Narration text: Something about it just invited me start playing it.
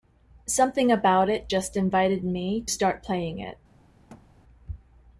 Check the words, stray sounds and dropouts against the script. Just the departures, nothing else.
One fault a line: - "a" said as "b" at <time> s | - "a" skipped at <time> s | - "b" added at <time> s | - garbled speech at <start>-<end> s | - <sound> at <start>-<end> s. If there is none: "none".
- thud at 4.1-4.3 s